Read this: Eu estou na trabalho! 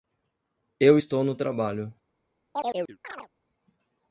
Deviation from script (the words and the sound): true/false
true